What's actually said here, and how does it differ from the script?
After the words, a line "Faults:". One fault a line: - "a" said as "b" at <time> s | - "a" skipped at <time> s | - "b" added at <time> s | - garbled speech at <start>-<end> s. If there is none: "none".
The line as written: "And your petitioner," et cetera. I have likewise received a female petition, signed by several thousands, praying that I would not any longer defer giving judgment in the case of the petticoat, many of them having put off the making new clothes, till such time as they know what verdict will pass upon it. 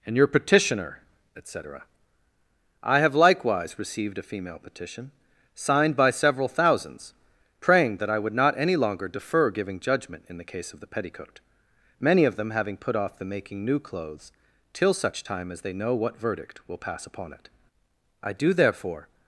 "And your petitioner," et cetera. I have likewise received a female petition, signed by several thousands, praying that I would not any longer defer giving judgment in the case of the petticoat, many of them having put off the making new clothes, till such time as they know what verdict will pass upon it. I do, therefore
Faults:
- "I do therefore" added at 18.2 s